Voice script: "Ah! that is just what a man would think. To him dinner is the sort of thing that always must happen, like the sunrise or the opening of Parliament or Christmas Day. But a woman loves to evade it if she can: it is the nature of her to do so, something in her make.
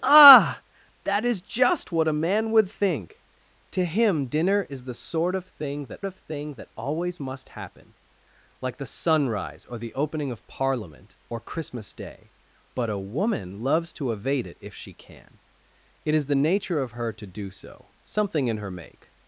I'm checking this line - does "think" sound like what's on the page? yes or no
yes